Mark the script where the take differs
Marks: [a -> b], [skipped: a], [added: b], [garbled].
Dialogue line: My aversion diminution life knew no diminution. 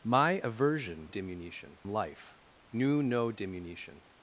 My aversion diminution life knew no diminution.